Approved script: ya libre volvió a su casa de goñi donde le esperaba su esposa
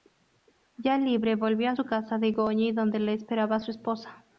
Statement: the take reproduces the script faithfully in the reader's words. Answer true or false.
true